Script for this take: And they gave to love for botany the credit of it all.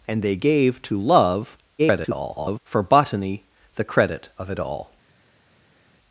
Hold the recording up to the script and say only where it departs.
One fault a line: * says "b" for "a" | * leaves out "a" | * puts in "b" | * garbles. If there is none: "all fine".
* garbles